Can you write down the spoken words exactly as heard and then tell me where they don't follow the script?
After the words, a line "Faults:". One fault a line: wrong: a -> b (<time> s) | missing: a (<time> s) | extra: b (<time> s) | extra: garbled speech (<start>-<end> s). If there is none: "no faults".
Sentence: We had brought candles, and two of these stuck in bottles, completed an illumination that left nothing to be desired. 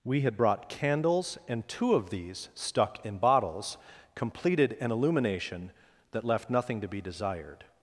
We had brought candles, and two of these stuck in bottles, completed an illumination that left nothing to be desired.
Faults:
no faults